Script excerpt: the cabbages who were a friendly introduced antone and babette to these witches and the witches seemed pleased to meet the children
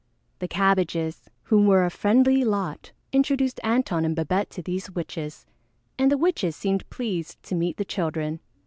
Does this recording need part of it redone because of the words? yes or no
yes